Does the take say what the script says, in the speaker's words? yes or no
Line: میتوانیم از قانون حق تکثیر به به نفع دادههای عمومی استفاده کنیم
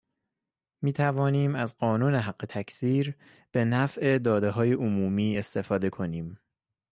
no